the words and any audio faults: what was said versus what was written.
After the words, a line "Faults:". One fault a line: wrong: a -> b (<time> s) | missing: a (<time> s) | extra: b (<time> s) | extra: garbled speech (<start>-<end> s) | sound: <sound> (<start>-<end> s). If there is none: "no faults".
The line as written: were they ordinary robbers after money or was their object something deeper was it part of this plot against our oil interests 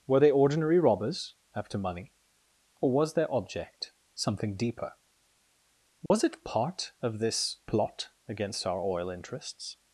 were they ordinary robbers after money or was their object something deeper was it part of this plot against our oil interests
Faults:
sound: dropout (6.1-6.1 s)